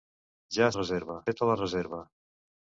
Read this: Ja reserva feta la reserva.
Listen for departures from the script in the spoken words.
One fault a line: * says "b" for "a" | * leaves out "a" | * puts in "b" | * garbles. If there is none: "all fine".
all fine